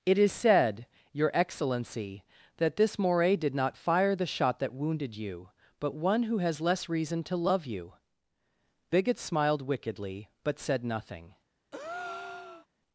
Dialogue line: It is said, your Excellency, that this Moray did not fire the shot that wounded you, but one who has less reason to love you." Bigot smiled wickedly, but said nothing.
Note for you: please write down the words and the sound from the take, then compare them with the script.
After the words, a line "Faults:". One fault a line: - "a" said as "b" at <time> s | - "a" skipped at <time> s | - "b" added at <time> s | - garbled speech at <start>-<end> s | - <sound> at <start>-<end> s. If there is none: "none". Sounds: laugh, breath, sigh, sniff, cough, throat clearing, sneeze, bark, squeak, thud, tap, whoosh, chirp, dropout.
It is said, your Excellency, that this Moray did not fire the shot that wounded you, but one who has less reason to love you." Bigot smiled wickedly, but said nothing.
Faults:
- breath at 11.7-12.7 s